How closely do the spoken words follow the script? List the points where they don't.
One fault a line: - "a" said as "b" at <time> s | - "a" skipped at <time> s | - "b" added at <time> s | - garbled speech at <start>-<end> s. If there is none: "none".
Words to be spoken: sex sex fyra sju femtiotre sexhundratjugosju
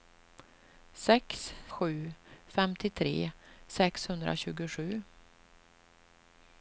- "sex fyra" skipped at 1.5 s